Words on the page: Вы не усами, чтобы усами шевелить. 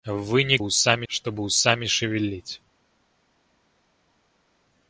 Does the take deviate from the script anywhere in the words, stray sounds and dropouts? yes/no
no